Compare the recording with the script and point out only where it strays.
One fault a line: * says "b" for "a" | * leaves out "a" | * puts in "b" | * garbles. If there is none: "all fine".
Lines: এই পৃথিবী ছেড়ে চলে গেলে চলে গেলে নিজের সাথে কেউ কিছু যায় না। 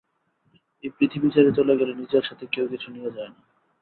* leaves out "চলে গেলে"
* puts in "নিয়ে"